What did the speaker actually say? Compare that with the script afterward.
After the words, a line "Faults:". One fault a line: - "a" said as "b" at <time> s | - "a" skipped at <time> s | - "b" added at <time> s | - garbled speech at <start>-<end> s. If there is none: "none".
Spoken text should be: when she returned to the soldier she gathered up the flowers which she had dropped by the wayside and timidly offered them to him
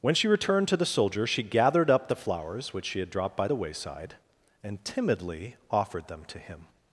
when she returned to the soldier she gathered up the flowers which she had dropped by the wayside and timidly offered them to him
Faults:
none